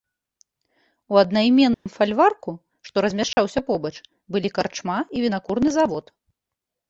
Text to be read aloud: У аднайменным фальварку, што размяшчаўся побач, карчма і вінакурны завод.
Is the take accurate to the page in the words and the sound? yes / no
no